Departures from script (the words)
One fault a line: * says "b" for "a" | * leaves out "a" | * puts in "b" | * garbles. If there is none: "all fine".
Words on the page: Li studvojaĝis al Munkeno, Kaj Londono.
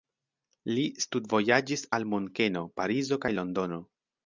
* puts in "Parizo"